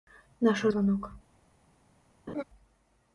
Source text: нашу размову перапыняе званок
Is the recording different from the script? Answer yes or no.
yes